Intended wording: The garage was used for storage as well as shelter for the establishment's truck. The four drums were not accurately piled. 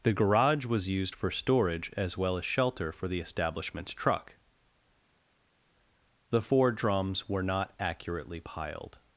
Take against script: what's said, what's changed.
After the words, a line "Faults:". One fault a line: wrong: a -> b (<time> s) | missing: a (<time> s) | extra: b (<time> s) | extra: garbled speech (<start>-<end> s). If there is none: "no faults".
The garage was used for storage as well as shelter for the establishment's truck. The four drums were not accurately piled.
Faults:
no faults